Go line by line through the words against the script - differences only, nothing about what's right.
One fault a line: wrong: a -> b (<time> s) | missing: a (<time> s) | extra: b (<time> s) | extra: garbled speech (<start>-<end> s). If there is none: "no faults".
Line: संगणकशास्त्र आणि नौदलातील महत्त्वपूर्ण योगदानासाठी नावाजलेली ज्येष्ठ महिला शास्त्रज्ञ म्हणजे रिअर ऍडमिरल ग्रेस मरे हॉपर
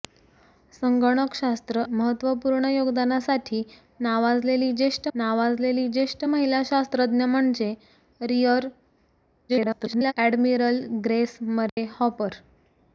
wrong: आणि नौदलातील महत्त्वपूर्ण योगदानासाठी -> महत्त्वपूर्ण योगदानासाठी नावाजलेली ज्येष्ठ (1.9 s)
extra: garbled speech (9.5-10.1 s)